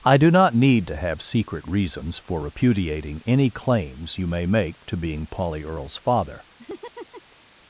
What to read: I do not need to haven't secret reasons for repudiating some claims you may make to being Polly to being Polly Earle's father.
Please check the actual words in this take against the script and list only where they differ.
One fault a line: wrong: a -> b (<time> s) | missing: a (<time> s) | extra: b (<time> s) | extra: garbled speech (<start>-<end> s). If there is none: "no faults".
wrong: haven't -> have (0.9 s)
wrong: some -> any (3.2 s)
missing: to being Polly (5.6 s)